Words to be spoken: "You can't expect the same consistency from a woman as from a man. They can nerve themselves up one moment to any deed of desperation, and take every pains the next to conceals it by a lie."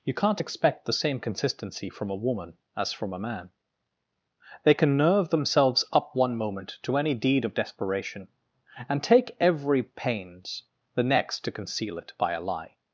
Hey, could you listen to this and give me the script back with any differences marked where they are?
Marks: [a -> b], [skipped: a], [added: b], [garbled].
"You can't expect the same consistency from a woman as from a man. They can nerve themselves up one moment to any deed of desperation, and take every pains the next to [conceals -> conceal] it by a lie."